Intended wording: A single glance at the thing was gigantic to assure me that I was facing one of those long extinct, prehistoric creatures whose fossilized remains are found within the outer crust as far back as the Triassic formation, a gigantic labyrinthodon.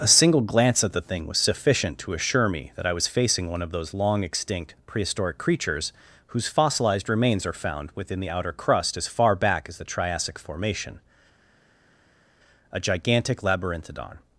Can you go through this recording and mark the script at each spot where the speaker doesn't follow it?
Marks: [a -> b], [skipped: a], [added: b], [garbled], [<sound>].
A single glance at the thing was [gigantic -> sufficient] to assure me that I was facing one of those long extinct, prehistoric creatures whose fossilized remains are found within the outer crust as far back as the Triassic formation, a gigantic labyrinthodon.